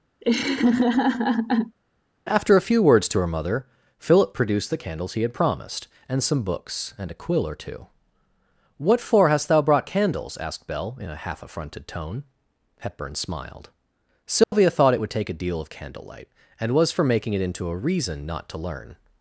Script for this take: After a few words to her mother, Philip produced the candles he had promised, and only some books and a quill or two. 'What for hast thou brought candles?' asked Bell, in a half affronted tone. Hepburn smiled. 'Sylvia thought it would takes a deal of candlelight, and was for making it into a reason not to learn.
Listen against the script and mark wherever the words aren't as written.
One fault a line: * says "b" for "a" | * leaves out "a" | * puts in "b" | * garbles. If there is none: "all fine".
* leaves out "only"
* says "take" for "takes"